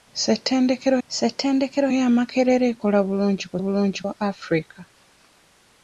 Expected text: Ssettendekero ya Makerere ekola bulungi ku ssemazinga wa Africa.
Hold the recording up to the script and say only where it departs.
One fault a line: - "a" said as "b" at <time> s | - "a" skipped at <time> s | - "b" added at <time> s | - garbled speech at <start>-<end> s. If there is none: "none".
- "ssettendekero" added at 1.1 s
- "ssemazinga" said as "bulungi" at 3.6 s